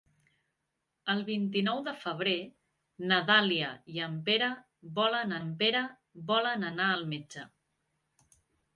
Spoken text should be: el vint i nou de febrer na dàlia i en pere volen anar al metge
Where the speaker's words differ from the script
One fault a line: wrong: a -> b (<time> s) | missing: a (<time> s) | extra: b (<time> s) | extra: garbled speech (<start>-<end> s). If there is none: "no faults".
extra: en pere volen (5.4 s)